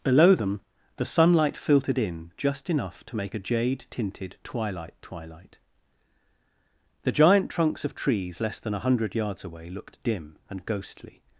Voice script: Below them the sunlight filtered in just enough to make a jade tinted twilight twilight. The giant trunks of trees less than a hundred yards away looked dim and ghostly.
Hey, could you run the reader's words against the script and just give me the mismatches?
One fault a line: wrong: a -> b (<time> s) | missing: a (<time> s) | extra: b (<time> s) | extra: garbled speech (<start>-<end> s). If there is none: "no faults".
no faults